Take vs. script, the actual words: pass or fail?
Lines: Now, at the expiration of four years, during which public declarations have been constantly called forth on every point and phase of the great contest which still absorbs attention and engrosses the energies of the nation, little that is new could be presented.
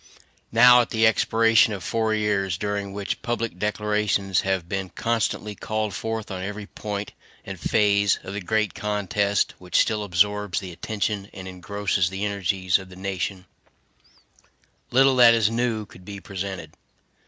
fail